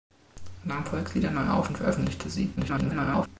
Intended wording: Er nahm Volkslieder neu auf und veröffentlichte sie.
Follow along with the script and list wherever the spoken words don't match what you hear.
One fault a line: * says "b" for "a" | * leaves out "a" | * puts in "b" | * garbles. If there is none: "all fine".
* garbles